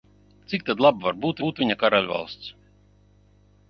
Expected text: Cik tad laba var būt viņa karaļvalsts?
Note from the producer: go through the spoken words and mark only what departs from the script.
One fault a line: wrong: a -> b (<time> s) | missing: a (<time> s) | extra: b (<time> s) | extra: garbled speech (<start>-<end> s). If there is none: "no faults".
extra: būt (1.5 s)